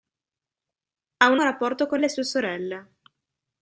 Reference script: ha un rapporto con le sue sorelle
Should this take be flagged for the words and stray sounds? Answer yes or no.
no